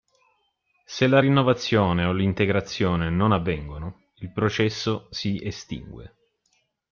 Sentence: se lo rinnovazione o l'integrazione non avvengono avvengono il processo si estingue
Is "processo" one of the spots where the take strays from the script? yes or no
no